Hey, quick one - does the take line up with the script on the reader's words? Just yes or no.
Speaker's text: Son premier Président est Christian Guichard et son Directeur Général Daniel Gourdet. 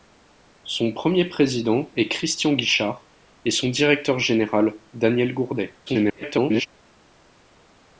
no